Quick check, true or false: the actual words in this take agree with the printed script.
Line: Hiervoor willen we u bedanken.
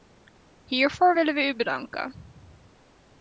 true